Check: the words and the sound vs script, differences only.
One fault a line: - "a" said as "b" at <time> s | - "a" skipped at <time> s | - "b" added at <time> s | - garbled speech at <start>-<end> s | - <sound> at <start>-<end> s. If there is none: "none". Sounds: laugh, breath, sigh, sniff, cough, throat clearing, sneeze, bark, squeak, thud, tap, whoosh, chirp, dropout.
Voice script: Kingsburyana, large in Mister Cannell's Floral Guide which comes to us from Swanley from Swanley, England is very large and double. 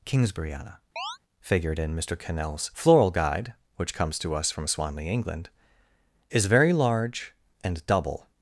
- chirp at 1.0-1.2 s
- "large" said as "figured" at 1.4 s
- "from Swanley" skipped at 5.1 s